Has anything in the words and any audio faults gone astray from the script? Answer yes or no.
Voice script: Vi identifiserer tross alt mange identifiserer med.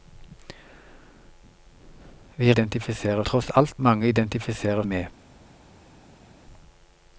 no